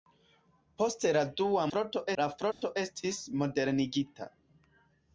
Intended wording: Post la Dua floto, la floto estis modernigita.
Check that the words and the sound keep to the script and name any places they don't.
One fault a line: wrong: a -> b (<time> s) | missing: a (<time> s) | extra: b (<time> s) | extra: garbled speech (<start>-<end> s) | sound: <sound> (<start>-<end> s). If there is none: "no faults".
sound: dropout (2.5-2.6 s)